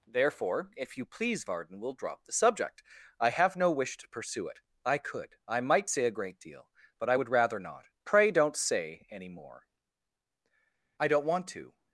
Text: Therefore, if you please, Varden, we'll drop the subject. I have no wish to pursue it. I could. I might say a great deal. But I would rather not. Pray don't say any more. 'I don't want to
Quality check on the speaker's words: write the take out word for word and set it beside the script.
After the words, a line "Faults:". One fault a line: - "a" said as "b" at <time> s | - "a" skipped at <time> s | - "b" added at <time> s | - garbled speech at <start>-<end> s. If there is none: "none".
Therefore, if you please, Varden, we'll drop the subject. I have no wish to pursue it. I could. I might say a great deal. But I would rather not. Pray don't say any more. 'I don't want to
Faults:
none